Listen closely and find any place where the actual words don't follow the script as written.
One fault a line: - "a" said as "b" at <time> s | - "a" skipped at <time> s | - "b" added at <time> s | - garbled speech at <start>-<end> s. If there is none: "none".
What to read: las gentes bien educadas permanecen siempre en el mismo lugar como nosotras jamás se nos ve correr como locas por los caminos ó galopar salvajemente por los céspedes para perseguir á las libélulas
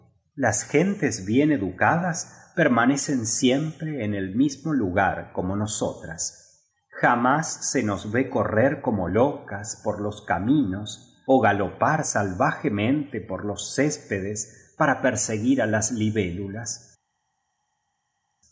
none